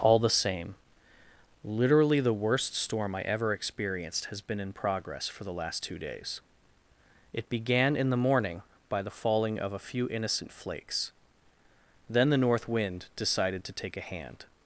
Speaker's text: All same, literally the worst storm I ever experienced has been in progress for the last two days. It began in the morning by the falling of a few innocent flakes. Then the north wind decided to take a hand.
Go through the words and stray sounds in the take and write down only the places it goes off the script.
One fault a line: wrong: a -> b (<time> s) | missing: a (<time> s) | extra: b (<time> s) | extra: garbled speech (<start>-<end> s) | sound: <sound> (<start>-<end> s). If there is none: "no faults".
extra: the (0.2 s)